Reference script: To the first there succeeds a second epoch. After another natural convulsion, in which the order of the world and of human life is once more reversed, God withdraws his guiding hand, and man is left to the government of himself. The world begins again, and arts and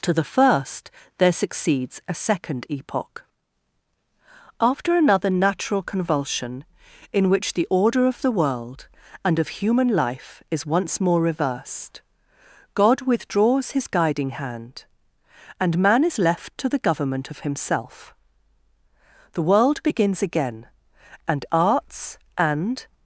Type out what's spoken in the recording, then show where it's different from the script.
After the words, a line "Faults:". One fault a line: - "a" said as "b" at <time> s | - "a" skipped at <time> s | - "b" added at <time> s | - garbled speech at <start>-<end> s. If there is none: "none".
To the first there succeeds a second epoch. After another natural convulsion, in which the order of the world and of human life is once more reversed, God withdraws his guiding hand, and man is left to the government of himself. The world begins again, and arts and
Faults:
none